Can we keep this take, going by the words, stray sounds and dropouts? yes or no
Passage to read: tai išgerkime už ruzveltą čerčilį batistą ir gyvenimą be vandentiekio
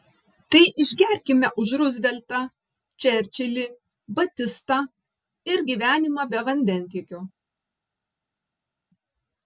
yes